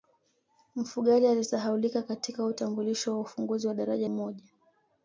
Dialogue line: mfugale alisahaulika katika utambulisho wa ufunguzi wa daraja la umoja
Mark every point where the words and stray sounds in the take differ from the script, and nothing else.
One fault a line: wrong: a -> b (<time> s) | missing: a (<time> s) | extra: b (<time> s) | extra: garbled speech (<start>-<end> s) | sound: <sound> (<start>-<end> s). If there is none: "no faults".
missing: la (4.1 s)